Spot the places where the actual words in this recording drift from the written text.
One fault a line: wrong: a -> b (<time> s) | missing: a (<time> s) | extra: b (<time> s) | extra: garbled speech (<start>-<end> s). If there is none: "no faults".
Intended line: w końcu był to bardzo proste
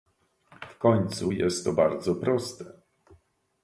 wrong: był -> jest (1.3 s)